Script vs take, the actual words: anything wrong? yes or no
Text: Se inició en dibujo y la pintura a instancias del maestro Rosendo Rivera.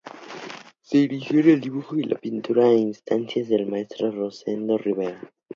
yes